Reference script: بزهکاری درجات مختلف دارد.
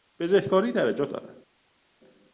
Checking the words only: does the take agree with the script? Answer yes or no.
no